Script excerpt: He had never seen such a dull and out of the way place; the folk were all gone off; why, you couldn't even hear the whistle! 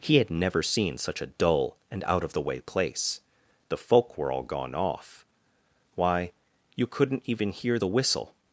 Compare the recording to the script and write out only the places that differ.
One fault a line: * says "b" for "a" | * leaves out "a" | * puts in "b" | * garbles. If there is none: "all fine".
all fine